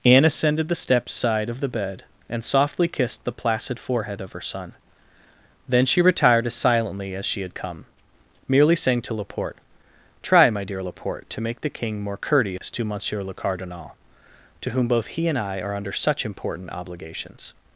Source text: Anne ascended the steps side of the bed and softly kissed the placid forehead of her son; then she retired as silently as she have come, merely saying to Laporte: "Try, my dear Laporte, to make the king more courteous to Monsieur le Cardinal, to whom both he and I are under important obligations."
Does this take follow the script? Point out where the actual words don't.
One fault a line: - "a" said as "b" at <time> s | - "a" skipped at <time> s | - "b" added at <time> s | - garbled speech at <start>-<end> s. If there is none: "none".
- "have" said as "had" at 7.4 s
- "such" added at 15.9 s